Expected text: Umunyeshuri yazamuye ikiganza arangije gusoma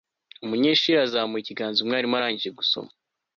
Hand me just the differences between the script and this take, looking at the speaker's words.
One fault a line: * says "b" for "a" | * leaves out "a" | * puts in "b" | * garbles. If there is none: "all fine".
* puts in "umwarimu"